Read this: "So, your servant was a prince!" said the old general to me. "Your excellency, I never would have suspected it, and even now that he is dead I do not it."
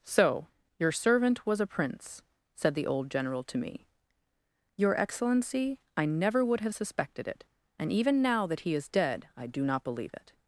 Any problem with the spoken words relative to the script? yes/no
yes